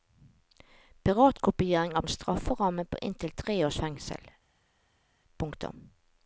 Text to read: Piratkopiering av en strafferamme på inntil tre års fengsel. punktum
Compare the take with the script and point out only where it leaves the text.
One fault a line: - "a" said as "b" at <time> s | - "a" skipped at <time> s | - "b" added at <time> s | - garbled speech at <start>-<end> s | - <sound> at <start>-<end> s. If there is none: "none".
none